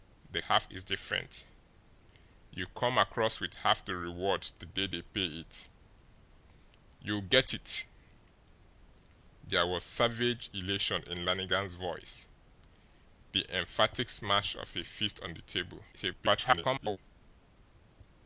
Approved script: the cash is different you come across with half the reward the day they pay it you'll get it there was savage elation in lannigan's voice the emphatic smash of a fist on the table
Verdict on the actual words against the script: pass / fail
fail